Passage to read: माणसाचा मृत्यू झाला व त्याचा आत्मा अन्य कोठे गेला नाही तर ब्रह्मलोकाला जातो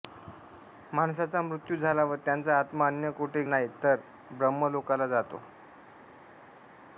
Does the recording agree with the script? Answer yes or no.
no